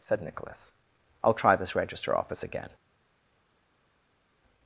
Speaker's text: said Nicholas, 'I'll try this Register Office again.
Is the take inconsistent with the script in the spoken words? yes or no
no